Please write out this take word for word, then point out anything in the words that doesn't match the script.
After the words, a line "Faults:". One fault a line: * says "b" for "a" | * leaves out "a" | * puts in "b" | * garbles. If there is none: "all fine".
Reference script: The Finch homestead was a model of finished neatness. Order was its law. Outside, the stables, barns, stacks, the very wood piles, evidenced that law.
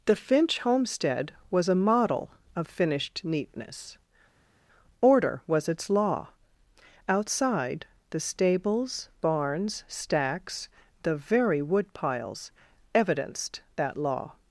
The Finch homestead was a model of finished neatness. Order was its law. Outside, the stables, barns, stacks, the very wood piles, evidenced that law.
Faults:
all fine